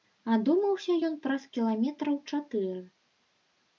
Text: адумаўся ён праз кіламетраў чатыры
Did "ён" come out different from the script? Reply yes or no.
no